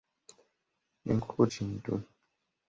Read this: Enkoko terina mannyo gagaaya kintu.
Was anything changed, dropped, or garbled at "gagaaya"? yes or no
yes